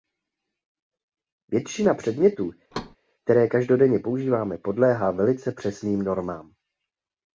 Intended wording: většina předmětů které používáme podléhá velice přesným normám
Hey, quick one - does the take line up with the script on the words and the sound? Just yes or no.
no